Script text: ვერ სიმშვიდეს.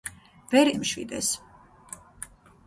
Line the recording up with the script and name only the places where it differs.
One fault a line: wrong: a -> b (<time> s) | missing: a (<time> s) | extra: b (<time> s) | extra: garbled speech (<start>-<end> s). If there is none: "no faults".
no faults